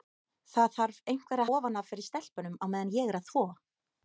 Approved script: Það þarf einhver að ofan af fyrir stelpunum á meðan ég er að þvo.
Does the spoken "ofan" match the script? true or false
true